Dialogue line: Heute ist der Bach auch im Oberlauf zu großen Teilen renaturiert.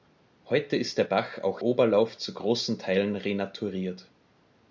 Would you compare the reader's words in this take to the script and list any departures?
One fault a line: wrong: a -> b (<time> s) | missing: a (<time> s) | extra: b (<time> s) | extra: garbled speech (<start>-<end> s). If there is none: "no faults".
missing: im (1.6 s)